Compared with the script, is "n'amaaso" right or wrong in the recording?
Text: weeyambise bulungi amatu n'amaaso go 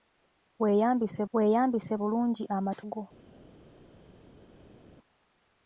wrong